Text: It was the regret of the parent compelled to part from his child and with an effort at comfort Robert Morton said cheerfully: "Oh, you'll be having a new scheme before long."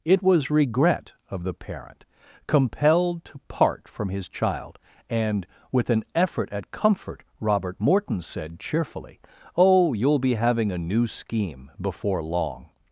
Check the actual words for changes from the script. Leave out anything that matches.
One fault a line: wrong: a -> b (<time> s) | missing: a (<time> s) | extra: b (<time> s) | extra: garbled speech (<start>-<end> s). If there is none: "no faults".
missing: the (0.5 s)